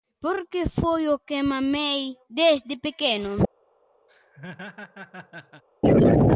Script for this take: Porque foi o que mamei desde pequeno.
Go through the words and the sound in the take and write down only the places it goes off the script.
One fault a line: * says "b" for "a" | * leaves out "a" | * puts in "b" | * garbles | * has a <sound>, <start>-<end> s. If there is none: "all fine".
* has a laugh, 4.1-5.6 s